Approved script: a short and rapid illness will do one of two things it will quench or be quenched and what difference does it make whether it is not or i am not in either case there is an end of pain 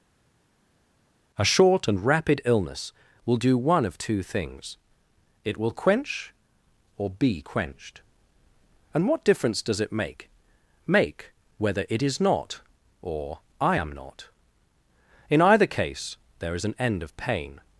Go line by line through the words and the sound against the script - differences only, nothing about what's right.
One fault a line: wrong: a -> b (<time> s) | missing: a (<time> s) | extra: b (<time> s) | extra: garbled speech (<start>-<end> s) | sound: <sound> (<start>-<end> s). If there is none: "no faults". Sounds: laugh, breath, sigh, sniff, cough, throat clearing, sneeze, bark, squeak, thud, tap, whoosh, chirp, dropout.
extra: make (10.8 s)